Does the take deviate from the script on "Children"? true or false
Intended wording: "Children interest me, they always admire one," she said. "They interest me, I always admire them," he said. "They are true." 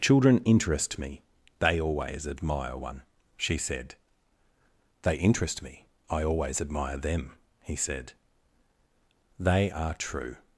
false